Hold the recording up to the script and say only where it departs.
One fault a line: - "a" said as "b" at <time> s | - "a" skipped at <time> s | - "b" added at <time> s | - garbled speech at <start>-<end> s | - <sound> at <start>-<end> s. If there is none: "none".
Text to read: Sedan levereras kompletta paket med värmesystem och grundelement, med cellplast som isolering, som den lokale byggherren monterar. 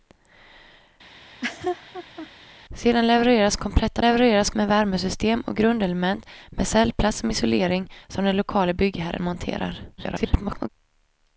- laugh at 1.2-2.3 s
- "paket" said as "levereras" at 4.0 s
- garbled speech at 10.0-10.7 s